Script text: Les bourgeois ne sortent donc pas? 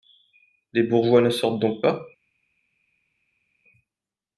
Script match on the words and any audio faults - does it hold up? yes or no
yes